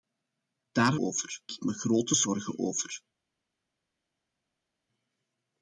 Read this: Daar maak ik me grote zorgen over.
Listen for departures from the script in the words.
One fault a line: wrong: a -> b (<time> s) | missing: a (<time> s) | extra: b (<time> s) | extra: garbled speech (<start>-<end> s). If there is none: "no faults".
wrong: maak -> over (1.0 s)